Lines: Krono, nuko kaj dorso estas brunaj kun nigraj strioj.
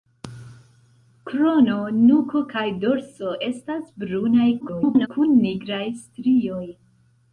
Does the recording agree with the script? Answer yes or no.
no